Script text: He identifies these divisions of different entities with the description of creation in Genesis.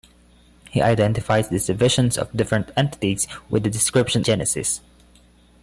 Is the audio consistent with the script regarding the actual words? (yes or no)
no